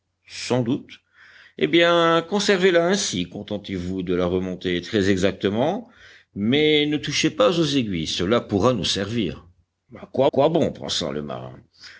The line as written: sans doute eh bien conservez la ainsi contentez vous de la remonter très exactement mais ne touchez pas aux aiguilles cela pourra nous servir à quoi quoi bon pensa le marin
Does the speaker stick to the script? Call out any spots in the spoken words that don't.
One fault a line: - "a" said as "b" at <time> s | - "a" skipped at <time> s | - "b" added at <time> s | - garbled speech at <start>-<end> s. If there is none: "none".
none